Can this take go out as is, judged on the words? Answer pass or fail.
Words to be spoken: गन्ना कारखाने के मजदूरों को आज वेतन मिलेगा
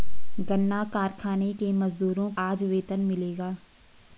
fail